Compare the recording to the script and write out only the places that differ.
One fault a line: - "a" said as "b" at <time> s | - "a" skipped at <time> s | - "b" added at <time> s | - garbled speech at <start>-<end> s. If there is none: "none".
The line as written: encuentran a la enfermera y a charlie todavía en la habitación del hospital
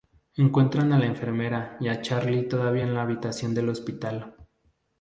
none